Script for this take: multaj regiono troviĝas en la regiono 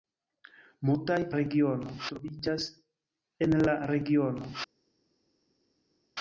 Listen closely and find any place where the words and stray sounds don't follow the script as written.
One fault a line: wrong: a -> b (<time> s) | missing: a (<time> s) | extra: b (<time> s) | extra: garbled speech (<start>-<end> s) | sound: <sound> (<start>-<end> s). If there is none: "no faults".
no faults